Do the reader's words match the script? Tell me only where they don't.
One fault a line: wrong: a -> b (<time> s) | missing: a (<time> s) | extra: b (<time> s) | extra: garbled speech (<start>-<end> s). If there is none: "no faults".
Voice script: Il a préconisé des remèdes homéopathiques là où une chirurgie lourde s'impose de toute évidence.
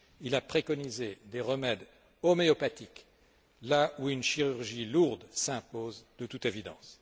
no faults